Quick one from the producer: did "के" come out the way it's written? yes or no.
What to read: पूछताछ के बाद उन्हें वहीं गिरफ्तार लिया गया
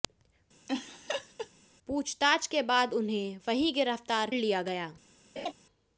yes